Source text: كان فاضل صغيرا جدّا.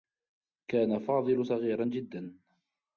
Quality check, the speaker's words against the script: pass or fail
pass